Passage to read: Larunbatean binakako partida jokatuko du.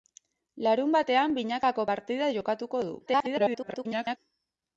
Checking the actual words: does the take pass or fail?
fail